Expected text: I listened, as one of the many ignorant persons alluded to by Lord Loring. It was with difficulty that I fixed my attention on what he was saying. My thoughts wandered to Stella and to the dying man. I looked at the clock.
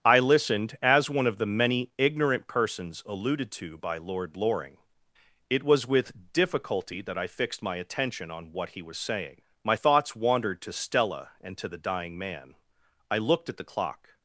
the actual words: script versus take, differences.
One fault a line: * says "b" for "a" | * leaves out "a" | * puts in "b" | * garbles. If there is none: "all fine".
all fine